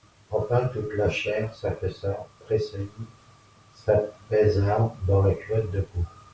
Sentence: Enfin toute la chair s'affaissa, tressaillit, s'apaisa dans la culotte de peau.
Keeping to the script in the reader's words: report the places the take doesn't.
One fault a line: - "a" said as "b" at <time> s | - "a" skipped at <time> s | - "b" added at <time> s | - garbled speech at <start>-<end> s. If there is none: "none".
none